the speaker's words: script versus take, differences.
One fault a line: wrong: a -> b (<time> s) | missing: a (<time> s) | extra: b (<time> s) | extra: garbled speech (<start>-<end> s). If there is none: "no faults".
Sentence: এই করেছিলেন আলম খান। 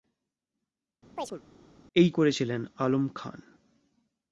no faults